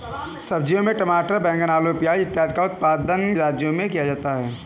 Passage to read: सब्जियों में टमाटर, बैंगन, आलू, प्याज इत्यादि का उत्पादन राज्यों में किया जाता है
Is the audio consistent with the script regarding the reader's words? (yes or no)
yes